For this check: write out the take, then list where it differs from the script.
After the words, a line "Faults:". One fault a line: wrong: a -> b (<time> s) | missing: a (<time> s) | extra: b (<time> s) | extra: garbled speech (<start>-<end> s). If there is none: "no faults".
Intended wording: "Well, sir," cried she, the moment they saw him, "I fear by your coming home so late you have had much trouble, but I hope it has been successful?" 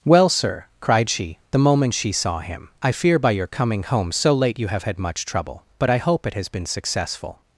"Well, sir," cried she, the moment she saw him, "I fear by your coming home so late you have had much trouble, but I hope it has been successful?"
Faults:
wrong: they -> she (1.9 s)